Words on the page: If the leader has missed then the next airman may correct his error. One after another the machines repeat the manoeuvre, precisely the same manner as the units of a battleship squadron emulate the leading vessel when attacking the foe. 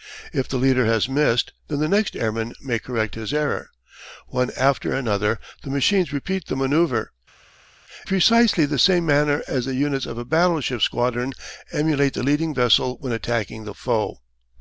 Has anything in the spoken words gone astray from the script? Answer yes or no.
no